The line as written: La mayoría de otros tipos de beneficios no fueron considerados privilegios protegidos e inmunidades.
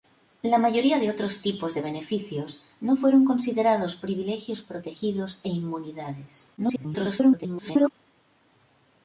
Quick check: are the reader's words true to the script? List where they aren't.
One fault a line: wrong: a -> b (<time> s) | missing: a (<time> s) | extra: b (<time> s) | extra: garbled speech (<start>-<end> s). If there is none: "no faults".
extra: garbled speech (6.6-7.9 s)